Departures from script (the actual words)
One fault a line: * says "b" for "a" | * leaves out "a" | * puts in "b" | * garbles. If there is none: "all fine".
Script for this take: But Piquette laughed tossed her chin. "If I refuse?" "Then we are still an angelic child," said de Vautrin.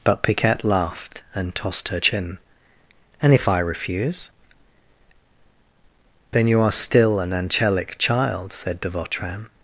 * puts in "and"
* puts in "And"
* says "you" for "we"